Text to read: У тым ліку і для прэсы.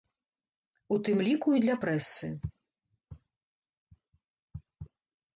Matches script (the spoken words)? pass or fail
pass